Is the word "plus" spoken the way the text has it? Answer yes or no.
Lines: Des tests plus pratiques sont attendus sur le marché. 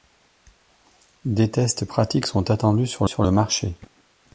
no